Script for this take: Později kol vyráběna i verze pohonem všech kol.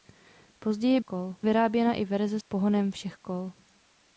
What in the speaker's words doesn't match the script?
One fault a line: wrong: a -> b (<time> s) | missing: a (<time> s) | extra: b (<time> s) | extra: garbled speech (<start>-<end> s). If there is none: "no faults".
no faults